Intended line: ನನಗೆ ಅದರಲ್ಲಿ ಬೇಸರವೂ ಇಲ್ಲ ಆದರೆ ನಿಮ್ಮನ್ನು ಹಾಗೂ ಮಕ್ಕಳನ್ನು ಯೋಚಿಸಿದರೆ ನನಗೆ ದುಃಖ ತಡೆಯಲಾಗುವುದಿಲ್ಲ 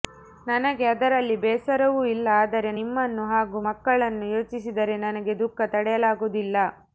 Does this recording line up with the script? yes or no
yes